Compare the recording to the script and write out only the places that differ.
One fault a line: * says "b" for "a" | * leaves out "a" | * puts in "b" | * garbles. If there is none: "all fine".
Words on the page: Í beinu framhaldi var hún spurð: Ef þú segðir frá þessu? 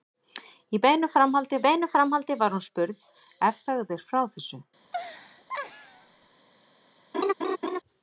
* puts in "beinu framhaldi"
* leaves out "þú"